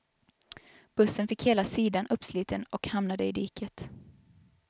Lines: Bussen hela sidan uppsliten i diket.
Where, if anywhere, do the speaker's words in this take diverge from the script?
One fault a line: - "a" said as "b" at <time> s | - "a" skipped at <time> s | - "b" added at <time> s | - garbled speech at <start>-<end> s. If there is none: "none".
- "fick" added at 1.3 s
- "och hamnade" added at 2.6 s